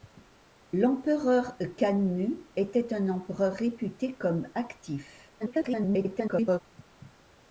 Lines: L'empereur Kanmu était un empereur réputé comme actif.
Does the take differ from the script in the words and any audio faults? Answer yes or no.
yes